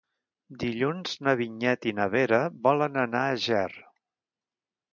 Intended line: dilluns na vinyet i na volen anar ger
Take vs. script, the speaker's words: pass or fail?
fail